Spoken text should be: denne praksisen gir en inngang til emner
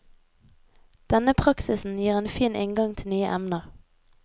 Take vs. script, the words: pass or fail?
fail